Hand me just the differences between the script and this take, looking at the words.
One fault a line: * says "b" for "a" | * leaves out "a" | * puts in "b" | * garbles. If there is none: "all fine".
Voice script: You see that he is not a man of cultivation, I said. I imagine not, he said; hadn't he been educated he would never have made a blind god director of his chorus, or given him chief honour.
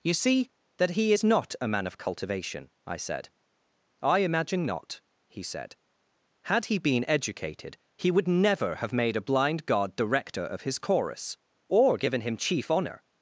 * says "had" for "hadn't"